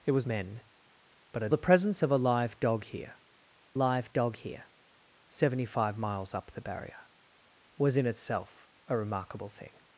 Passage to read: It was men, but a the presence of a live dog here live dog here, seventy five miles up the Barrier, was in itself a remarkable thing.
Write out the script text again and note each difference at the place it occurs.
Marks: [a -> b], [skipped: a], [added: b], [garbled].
It was men, but a the presence of a live dog here live dog here, seventy five miles up the Barrier, was in itself a remarkable thing.